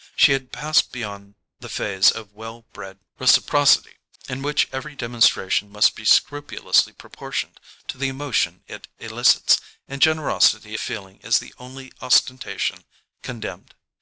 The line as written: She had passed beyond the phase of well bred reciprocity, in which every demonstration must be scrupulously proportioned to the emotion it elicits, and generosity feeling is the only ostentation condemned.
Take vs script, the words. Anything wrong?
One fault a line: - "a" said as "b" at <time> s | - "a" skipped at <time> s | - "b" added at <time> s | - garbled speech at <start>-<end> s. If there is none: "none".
none